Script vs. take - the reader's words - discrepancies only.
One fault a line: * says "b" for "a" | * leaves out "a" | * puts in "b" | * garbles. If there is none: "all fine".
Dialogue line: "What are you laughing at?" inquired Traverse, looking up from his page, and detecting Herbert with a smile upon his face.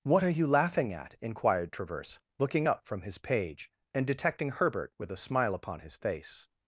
all fine